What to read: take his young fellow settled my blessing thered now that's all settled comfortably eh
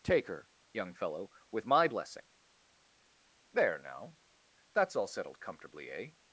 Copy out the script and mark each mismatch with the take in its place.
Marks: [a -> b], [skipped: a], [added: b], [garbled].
take [his -> her] young fellow [settled -> with] my blessing [thered -> there] now that's all settled comfortably eh